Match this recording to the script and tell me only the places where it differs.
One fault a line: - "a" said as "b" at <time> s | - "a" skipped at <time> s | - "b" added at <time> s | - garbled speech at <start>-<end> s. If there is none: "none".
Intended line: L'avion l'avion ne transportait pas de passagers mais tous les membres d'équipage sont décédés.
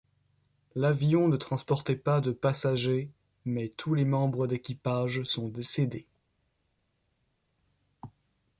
- "l'avion" skipped at 1.3 s